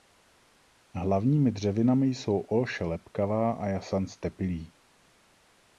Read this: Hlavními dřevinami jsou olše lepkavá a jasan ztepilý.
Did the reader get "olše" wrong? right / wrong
right